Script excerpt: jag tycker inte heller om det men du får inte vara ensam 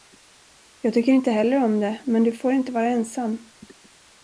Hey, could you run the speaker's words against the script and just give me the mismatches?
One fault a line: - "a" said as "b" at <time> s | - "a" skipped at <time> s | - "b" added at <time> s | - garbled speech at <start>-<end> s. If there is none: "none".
none